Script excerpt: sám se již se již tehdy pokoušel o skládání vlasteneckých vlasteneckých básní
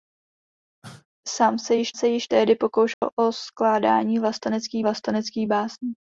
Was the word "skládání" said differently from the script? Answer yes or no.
no